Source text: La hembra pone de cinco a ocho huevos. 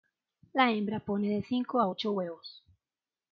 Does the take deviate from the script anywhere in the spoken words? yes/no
no